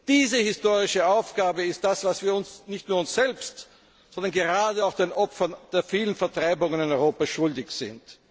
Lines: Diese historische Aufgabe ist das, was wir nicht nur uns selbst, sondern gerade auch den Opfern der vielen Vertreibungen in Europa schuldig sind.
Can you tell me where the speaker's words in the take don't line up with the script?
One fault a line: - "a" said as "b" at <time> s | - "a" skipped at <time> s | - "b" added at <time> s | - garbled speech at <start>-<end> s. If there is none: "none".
none